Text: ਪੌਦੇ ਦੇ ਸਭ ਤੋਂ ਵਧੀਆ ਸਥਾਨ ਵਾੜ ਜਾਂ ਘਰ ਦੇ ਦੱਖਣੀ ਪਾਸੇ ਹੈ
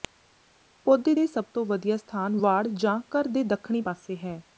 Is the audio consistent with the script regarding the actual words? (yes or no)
yes